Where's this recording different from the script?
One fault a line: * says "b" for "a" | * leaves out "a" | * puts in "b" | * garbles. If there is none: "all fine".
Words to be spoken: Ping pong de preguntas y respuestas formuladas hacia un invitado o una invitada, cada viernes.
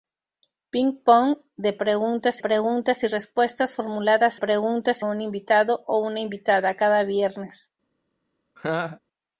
* puts in "preguntas"
* says "preguntas" for "hacia"